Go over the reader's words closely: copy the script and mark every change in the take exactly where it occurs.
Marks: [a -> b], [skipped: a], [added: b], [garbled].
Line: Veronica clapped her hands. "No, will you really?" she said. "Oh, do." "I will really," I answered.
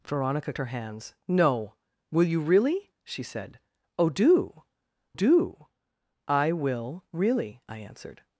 Veronica [skipped: clapped] her hands. "No, will you really?" she said. "Oh, do." [added: do] "I will really," I answered.